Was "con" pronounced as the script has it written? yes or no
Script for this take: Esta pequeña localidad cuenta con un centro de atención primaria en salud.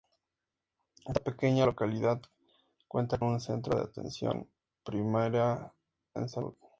no